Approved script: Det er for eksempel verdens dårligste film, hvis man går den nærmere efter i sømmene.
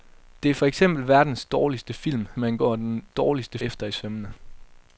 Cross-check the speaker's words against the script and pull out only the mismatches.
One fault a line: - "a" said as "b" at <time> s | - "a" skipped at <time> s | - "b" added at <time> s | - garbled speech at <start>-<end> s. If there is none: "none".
- "hvis" skipped at 2.3 s
- "nærmere" said as "dårligste" at 3.1 s